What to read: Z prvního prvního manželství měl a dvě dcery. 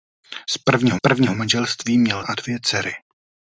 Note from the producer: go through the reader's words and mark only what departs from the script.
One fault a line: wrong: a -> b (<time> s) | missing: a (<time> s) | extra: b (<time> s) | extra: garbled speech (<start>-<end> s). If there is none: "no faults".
no faults